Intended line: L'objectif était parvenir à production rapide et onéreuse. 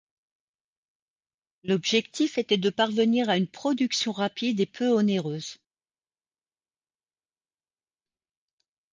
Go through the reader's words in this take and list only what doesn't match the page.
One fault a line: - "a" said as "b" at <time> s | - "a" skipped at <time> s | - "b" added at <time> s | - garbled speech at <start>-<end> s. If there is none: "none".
- "de" added at 2.6 s
- "une" added at 3.4 s
- "peu" added at 4.7 s